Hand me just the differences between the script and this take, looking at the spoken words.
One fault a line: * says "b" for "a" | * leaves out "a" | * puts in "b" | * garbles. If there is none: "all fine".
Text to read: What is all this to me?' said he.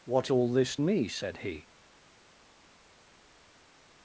* leaves out "is"
* leaves out "to"